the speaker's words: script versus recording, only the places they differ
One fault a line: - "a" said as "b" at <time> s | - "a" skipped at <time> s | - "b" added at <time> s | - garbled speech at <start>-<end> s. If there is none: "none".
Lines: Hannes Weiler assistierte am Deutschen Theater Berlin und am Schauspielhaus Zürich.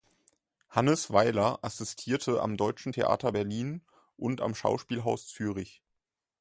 none